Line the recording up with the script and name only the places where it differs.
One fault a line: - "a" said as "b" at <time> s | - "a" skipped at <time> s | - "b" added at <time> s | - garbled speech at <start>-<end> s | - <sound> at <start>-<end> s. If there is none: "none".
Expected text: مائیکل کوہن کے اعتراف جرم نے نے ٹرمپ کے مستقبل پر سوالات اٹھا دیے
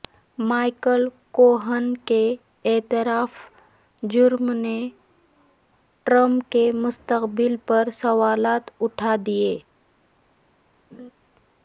- "نے" skipped at 4.8 s
- laugh at 10.9-11.1 s